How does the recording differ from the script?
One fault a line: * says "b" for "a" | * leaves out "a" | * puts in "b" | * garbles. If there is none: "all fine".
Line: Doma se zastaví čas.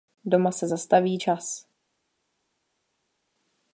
all fine